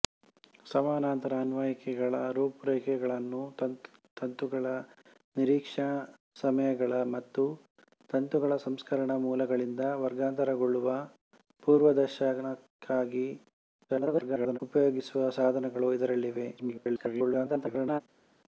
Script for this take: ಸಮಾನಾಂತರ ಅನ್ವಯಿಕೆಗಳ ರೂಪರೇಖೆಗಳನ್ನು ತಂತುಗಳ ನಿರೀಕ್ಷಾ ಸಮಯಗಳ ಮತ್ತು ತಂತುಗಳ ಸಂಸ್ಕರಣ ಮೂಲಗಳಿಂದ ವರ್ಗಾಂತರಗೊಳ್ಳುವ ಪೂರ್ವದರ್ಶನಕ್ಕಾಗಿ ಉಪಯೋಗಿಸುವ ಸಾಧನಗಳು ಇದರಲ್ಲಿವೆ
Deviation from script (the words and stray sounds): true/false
true